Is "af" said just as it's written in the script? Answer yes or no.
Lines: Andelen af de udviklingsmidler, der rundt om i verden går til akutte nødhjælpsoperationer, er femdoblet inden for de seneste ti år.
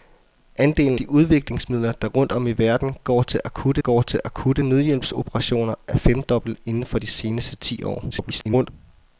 no